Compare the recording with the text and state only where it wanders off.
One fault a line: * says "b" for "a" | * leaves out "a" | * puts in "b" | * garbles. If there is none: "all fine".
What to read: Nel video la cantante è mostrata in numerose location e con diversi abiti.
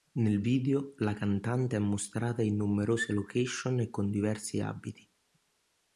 all fine